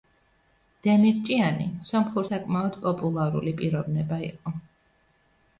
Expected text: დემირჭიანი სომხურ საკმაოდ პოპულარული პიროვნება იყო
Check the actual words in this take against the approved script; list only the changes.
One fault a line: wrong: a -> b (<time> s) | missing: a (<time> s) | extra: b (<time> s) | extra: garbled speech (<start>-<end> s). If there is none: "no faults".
no faults